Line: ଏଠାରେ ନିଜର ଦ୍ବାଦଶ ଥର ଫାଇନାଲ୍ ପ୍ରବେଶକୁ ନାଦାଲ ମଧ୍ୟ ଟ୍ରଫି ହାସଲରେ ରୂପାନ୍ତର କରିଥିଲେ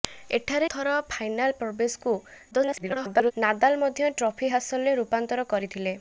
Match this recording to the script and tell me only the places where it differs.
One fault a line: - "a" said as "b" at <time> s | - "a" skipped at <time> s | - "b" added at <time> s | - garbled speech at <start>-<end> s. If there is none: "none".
- "ନିଜର ଦ୍ବାଦଶ" skipped at 0.7 s
- garbled speech at 2.5-3.3 s